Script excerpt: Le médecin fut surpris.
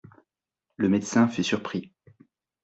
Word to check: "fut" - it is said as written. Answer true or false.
true